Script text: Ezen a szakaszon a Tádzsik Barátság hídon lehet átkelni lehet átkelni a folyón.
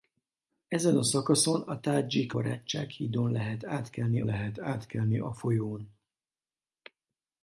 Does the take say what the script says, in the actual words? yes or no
yes